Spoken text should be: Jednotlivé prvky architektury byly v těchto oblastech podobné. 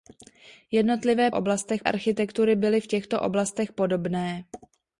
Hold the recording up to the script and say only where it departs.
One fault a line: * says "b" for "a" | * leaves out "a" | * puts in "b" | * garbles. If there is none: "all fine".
* says "oblastech" for "prvky"